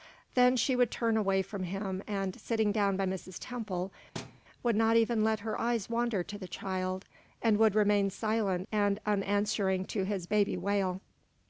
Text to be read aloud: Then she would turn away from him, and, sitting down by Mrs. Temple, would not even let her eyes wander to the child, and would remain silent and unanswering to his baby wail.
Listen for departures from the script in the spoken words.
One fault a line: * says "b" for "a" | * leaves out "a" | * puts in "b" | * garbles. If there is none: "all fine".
all fine